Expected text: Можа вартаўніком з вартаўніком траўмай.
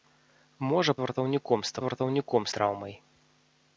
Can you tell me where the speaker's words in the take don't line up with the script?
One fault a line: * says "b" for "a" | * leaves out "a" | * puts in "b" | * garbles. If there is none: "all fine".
all fine